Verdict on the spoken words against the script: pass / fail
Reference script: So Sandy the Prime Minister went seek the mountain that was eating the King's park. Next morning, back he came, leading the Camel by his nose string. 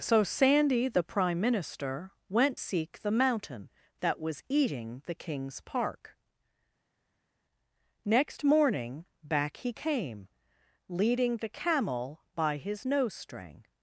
pass